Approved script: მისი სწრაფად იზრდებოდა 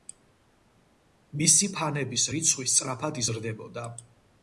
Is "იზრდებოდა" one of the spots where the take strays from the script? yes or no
no